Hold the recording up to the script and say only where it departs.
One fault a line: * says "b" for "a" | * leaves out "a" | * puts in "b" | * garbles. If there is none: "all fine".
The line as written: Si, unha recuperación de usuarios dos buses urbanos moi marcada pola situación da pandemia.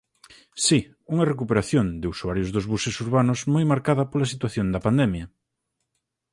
all fine